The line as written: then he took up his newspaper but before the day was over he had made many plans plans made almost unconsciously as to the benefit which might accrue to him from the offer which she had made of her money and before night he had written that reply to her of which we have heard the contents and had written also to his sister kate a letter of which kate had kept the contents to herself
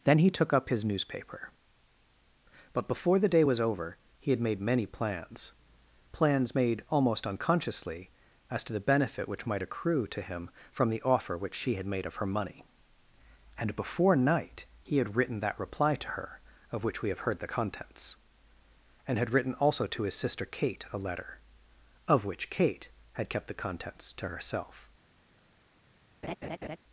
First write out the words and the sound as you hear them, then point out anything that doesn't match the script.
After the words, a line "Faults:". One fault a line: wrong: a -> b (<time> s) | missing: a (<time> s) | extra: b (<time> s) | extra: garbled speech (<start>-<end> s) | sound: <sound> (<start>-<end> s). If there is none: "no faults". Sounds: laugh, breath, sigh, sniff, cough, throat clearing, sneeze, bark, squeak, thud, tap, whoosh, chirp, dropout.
then he took up his newspaper but before the day was over he had made many plans plans made almost unconsciously as to the benefit which might accrue to him from the offer which she had made of her money and before night he had written that reply to her of which we have heard the contents and had written also to his sister kate a letter of which kate had kept the contents to herself
Faults:
sound: laugh (26.2-26.8 s)